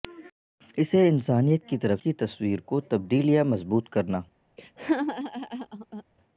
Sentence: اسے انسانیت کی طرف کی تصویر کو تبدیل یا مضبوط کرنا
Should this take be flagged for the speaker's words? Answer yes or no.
no